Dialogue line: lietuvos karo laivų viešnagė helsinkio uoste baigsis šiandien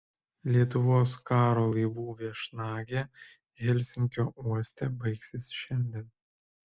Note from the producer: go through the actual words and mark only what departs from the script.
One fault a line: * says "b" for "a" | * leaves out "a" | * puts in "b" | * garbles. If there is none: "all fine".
all fine